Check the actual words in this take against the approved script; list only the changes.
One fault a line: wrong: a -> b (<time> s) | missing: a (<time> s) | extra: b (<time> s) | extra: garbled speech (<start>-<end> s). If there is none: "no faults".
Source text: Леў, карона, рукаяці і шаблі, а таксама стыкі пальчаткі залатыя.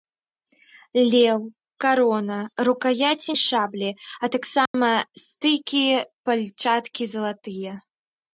no faults